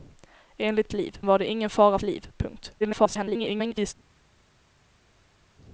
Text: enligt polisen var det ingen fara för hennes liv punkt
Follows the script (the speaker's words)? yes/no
no